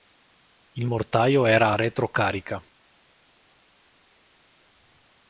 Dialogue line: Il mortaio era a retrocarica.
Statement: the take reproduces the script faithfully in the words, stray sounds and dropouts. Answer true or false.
true